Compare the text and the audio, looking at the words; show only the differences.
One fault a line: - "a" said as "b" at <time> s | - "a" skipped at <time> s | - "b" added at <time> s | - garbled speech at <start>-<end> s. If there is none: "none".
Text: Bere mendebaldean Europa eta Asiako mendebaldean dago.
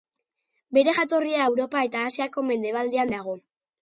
- "mendebaldean" said as "jatorria" at 0.9 s